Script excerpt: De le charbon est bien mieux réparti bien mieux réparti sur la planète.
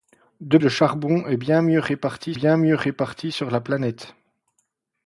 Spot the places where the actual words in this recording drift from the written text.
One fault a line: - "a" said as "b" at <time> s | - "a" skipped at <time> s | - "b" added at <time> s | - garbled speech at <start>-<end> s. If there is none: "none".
none